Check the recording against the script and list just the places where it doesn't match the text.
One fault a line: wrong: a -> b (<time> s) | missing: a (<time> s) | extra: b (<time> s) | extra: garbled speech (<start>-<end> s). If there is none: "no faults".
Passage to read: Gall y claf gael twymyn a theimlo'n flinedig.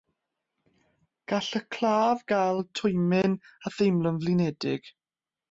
no faults